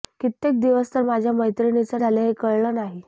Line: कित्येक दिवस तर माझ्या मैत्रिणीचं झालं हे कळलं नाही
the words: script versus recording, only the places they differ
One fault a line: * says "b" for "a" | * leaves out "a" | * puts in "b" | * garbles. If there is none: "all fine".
all fine